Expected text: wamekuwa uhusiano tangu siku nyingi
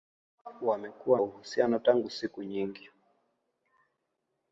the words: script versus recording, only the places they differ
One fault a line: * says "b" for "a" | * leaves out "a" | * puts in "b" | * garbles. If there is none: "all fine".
all fine